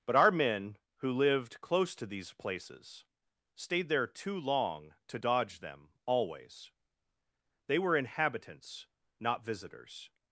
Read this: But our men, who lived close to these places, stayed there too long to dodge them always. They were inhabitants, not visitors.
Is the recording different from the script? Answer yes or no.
no